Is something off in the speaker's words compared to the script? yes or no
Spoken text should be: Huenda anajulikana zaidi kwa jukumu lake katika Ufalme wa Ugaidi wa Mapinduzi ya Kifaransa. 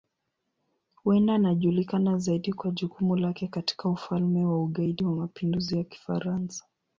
no